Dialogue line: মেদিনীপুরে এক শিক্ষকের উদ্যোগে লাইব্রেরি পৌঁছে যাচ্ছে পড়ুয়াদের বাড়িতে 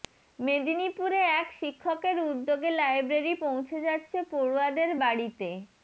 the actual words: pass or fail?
pass